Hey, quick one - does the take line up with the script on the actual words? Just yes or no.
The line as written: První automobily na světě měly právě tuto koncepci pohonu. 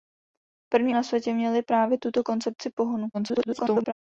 no